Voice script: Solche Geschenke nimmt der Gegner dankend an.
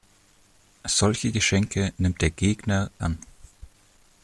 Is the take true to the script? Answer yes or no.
no